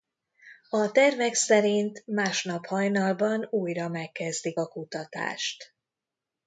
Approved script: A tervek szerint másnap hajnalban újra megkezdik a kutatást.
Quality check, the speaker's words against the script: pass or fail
pass